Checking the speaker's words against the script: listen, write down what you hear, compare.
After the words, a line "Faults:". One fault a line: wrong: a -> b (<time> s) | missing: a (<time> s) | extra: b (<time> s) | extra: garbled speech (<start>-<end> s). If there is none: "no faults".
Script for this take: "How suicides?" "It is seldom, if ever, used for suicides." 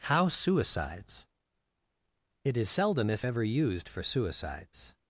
"How suicides?" "It is seldom, if ever, used for suicides."
Faults:
no faults